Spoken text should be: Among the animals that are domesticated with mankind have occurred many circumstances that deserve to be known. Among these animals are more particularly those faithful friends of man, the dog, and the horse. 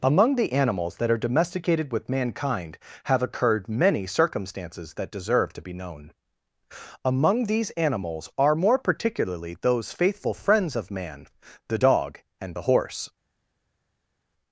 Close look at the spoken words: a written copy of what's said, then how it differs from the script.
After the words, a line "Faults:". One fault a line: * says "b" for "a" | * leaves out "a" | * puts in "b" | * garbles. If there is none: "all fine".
Among the animals that are domesticated with mankind have occurred many circumstances that deserve to be known. Among these animals are more particularly those faithful friends of man, the dog, and the horse.
Faults:
all fine